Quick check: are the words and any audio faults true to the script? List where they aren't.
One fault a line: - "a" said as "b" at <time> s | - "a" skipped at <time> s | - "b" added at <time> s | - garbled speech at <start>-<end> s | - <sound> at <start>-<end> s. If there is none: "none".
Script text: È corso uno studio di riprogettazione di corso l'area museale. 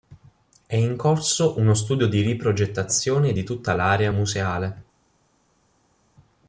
- "in" added at 0.8 s
- "corso" said as "tutta" at 3.4 s